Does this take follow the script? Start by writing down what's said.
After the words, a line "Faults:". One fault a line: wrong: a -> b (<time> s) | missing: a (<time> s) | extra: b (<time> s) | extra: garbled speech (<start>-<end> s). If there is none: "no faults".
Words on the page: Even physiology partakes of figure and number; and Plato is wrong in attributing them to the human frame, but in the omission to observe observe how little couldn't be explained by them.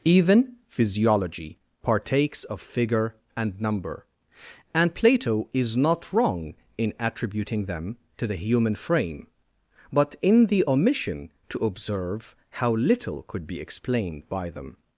Even physiology partakes of figure and number; and Plato is not wrong in attributing them to the human frame, but in the omission to observe how little could be explained by them.
Faults:
extra: not (5.8 s)
missing: observe (12.4 s)
wrong: couldn't -> could (13.2 s)